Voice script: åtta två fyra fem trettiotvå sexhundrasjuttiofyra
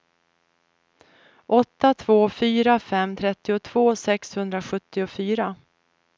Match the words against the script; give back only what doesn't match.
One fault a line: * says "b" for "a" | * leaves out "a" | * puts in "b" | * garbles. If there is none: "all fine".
all fine